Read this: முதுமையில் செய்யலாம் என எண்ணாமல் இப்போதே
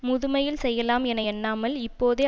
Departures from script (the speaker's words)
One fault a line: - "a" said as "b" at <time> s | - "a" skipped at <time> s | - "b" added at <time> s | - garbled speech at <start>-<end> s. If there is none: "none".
none